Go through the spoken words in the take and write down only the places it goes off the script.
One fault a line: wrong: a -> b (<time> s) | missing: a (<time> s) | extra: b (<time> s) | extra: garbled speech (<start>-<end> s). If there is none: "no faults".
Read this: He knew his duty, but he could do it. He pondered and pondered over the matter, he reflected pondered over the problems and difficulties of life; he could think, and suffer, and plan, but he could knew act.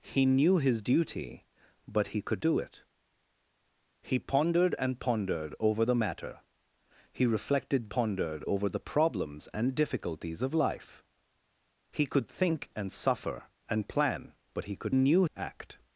no faults